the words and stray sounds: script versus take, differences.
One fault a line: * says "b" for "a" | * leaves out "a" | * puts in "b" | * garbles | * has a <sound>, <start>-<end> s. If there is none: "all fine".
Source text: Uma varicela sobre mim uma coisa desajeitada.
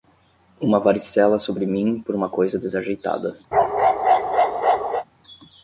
* puts in "por"
* has a bark, 3.5-5.0 s